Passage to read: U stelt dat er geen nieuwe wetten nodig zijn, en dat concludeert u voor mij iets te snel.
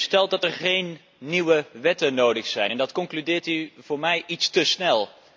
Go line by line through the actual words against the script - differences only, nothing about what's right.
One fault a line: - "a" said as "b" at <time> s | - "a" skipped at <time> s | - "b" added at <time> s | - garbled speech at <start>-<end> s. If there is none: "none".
none